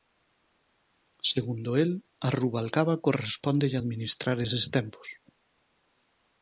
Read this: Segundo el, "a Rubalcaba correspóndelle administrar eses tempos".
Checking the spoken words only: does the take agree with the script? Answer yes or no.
yes